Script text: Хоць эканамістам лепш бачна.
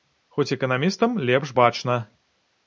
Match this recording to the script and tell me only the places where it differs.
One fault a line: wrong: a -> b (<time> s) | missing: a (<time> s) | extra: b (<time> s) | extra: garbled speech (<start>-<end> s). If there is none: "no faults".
no faults